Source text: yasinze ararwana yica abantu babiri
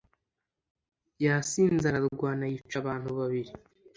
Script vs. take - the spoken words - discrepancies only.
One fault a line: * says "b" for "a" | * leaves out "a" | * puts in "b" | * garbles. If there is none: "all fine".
all fine